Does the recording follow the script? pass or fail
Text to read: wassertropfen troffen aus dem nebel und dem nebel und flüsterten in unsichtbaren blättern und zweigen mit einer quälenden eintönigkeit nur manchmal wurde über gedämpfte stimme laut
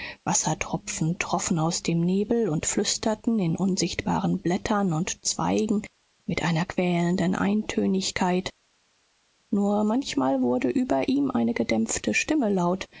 fail